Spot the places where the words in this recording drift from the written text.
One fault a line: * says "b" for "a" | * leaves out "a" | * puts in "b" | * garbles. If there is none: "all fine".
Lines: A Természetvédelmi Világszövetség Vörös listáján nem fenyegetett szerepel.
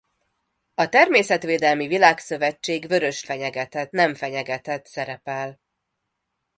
* says "fenyegetett" for "listáján"